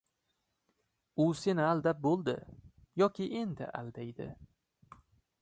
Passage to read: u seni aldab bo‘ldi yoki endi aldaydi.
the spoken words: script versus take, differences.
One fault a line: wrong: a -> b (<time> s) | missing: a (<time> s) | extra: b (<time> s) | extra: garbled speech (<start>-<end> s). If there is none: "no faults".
no faults